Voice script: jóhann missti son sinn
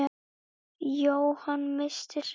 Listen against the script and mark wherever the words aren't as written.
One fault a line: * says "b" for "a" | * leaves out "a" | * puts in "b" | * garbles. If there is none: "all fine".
* leaves out "son"